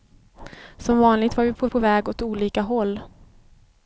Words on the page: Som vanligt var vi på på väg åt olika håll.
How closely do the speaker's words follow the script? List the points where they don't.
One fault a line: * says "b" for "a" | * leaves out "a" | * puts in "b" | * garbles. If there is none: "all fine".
all fine